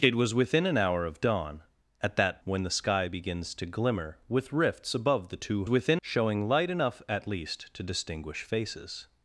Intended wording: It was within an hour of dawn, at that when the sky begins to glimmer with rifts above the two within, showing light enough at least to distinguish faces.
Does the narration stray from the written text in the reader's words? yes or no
no